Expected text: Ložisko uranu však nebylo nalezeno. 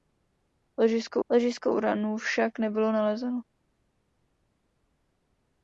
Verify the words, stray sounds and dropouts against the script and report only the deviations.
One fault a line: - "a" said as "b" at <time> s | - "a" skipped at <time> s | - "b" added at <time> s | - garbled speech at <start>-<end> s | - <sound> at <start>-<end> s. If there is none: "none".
- "ložisko" added at 1.3 s